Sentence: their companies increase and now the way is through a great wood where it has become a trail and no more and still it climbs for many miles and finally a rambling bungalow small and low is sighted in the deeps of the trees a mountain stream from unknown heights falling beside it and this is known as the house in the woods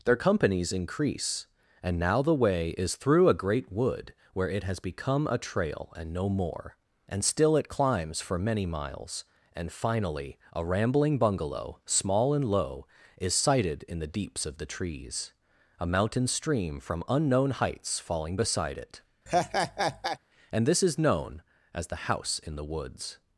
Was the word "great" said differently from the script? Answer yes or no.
no